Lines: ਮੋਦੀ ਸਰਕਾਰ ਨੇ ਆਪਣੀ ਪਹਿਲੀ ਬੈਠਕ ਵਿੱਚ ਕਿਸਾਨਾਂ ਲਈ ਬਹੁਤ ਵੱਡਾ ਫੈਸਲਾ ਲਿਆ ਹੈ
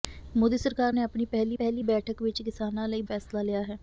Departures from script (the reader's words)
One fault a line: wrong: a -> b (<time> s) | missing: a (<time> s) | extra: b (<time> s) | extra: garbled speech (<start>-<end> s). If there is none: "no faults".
extra: ਪਹਿਲੀ (1.5 s)
missing: ਬਹੁਤ ਵੱਡਾ (3.0 s)